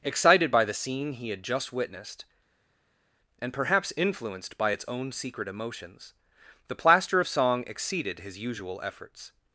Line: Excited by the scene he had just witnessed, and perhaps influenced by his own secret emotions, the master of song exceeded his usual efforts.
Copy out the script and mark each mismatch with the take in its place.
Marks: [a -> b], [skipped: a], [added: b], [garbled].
Excited by the scene he had just witnessed, and perhaps influenced by [his -> its] own secret emotions, the [master -> plaster] of song exceeded his usual efforts.